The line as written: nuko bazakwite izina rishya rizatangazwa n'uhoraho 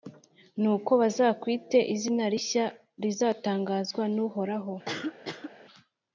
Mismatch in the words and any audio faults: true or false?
true